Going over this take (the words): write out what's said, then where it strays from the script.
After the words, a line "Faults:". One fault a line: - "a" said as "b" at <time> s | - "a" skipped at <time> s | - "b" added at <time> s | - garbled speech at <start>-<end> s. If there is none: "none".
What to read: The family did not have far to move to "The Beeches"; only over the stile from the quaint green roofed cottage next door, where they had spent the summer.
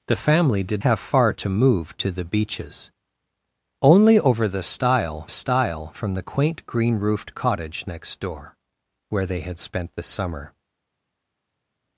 The family did have far to move to "The Beeches"; only over the stile stile from the quaint green roofed cottage next door, where they had spent the summer.
Faults:
- "not" skipped at 0.8 s
- "stile" added at 5.3 s